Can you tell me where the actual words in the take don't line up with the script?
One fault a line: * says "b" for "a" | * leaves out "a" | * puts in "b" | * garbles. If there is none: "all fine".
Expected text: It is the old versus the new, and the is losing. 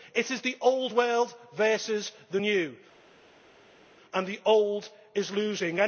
* puts in "world"
* puts in "old"